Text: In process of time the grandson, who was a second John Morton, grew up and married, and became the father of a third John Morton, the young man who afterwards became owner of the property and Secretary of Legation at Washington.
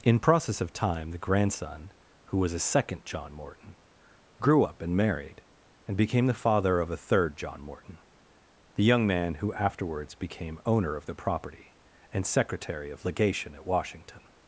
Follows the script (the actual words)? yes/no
yes